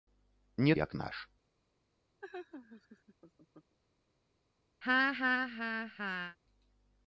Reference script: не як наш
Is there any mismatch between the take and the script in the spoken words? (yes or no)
no